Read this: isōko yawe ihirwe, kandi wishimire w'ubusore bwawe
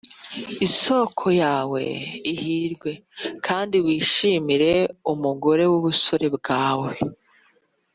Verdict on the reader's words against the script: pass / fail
fail